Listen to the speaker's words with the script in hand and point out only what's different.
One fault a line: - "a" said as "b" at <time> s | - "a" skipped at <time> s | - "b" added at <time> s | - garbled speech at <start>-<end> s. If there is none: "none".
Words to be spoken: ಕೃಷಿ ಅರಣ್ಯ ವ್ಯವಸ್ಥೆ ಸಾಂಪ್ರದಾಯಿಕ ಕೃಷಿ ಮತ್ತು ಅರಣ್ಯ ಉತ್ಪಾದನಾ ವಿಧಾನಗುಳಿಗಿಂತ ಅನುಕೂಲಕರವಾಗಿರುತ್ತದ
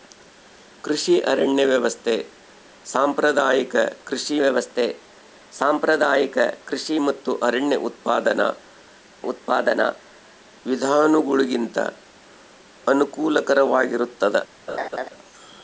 - "ವ್ಯವಸ್ಥೆ ಸಾಂಪ್ರದಾಯಿಕ ಕೃಷಿ" added at 4.4 s
- "ಉತ್ಪಾದನಾ" added at 9.2 s